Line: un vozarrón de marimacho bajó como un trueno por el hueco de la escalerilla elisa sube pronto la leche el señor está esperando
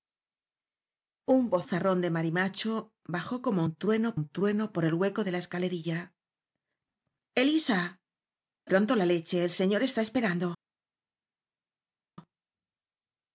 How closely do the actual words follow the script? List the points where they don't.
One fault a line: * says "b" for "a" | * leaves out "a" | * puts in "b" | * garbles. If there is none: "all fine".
* puts in "un trueno"
* leaves out "sube"